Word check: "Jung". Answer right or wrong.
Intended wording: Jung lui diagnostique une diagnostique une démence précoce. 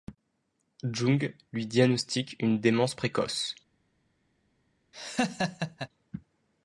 right